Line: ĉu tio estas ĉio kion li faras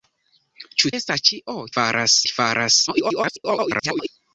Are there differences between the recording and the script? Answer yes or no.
yes